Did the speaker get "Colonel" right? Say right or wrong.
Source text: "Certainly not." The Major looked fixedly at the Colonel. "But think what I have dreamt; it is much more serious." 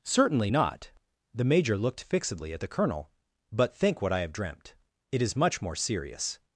right